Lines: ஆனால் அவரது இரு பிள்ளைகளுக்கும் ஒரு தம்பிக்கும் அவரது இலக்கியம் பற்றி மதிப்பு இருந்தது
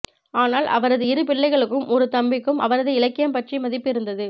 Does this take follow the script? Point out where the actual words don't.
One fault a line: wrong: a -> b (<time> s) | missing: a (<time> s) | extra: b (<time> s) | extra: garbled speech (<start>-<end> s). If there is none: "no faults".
no faults